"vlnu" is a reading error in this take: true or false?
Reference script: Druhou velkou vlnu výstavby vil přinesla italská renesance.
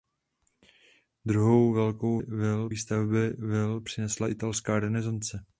true